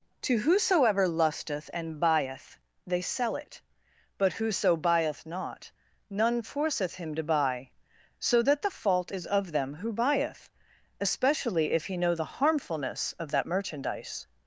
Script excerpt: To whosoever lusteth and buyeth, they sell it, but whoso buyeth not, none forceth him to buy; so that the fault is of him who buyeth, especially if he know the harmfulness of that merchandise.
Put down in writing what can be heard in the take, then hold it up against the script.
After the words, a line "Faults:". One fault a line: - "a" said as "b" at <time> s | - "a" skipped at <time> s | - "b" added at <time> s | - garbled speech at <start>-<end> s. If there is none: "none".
To whosoever lusteth and buyeth, they sell it, but whoso buyeth not, none forceth him to buy; so that the fault is of them who buyeth, especially if he know the harmfulness of that merchandise.
Faults:
- "him" said as "them" at 9.5 s